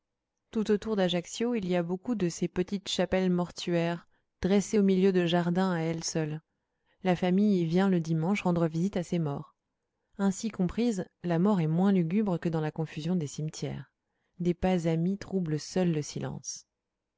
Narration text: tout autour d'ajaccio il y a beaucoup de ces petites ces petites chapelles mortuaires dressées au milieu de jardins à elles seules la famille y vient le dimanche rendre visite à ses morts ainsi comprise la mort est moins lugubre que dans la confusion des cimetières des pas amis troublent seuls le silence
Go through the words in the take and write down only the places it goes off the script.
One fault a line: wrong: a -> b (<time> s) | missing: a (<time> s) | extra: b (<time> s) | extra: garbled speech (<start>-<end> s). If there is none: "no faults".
missing: ces petites (2.9 s)